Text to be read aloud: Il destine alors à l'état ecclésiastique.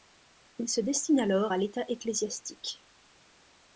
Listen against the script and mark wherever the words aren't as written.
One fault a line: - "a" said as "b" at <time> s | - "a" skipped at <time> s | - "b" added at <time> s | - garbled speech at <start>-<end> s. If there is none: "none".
- "se" added at 0.7 s